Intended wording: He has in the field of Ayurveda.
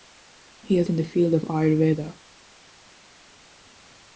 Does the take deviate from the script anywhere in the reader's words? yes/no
no